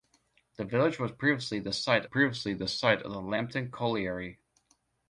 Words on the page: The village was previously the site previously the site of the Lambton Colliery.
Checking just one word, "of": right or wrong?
right